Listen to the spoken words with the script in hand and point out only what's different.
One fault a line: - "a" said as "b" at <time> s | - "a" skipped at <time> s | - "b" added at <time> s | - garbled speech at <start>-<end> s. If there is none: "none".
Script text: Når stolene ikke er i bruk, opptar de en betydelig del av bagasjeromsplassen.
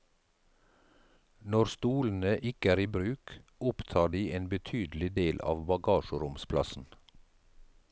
none